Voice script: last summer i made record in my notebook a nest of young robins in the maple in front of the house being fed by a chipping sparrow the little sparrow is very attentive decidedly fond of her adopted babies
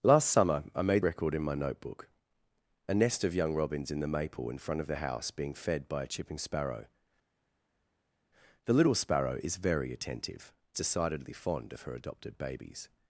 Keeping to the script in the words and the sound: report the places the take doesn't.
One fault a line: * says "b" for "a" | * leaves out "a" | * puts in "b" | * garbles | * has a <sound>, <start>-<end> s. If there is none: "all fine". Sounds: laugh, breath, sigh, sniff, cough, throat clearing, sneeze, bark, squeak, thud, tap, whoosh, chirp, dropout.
all fine